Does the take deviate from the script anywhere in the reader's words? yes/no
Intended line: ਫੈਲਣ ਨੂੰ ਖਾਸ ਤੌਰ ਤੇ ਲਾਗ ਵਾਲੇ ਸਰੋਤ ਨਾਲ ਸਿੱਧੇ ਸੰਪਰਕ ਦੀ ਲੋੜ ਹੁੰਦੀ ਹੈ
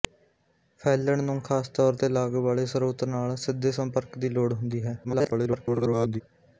yes